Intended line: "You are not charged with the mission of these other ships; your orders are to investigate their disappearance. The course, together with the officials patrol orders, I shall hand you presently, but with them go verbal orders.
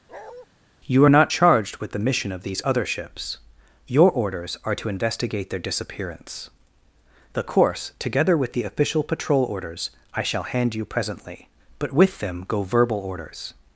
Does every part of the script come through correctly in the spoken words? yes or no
no